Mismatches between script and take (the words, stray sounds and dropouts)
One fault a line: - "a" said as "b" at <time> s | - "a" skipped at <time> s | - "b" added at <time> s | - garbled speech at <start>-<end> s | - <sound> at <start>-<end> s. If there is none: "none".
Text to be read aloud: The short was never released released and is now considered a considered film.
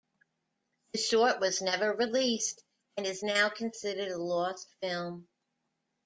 - "released" skipped at 2.6 s
- "considered" said as "lost" at 4.2 s